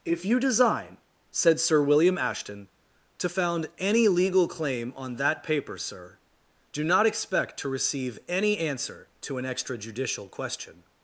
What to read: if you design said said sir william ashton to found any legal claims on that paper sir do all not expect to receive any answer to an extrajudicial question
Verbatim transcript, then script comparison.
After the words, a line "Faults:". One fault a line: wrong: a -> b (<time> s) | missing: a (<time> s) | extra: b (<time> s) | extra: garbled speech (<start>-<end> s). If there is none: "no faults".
if you design said sir william ashton to found any legal claim on that paper sir do not expect to receive any answer to an extrajudicial question
Faults:
missing: said (1.6 s)
wrong: claims -> claim (4.5 s)
missing: all (6.8 s)